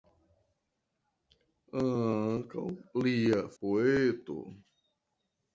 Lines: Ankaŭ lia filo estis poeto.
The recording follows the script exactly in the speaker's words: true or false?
false